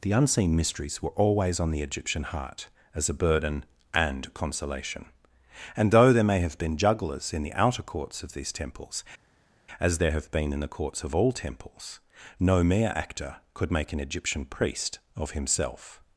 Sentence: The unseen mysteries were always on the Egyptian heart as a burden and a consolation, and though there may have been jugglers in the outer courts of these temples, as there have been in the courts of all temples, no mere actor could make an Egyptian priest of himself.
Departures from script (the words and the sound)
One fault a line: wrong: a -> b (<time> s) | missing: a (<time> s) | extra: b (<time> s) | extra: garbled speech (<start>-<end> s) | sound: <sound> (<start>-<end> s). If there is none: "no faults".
missing: a (4.3 s)